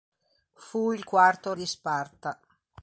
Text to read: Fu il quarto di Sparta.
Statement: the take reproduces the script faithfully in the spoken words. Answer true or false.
true